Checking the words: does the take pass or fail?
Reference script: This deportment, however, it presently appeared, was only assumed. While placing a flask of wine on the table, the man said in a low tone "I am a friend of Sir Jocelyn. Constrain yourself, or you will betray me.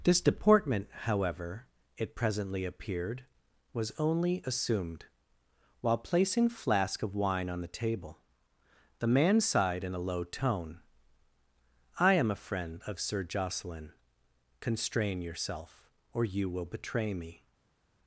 fail